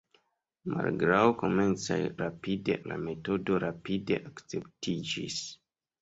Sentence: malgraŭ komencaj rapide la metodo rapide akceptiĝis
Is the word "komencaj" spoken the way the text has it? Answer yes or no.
yes